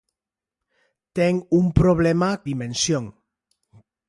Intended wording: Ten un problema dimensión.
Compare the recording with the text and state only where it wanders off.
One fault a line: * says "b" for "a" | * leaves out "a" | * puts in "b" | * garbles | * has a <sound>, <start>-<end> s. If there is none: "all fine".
all fine